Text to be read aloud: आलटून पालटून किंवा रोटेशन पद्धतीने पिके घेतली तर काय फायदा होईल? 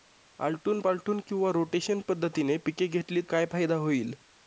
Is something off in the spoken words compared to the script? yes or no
yes